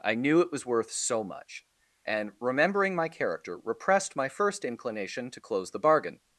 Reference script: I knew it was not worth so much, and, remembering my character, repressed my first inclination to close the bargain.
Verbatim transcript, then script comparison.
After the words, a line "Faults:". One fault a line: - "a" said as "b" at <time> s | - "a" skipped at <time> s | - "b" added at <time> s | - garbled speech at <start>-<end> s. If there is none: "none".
I knew it was worth so much, and, remembering my character, repressed my first inclination to close the bargain.
Faults:
- "not" skipped at 0.7 s